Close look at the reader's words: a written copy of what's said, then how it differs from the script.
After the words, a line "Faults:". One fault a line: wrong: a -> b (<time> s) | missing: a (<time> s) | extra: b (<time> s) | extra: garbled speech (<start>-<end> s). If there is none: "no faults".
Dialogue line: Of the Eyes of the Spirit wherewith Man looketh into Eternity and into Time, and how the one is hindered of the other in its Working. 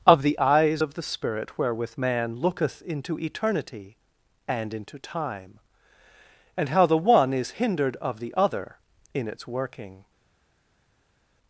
Of the Eyes of the Spirit wherewith Man looketh into Eternity and into Time, and how the one is hindered of the other in its Working.
Faults:
no faults